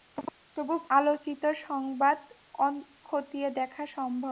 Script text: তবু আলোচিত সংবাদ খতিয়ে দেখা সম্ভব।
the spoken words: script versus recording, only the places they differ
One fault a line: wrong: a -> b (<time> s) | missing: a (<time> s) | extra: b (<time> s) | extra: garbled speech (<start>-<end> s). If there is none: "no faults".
no faults